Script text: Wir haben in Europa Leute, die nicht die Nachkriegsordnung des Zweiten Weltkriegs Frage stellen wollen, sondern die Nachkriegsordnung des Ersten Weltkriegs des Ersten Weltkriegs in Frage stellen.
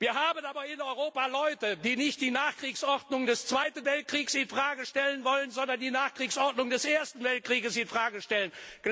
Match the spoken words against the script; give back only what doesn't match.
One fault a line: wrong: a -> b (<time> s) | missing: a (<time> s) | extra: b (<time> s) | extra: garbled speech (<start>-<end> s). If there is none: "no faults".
extra: aber (0.5 s)
extra: in (4.3 s)
missing: des Ersten Weltkriegs (7.7 s)